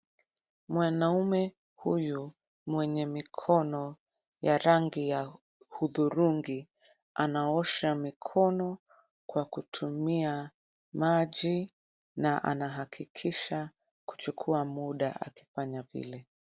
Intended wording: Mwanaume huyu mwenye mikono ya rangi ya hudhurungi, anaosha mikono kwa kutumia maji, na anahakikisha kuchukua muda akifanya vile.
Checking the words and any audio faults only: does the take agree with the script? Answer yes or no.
yes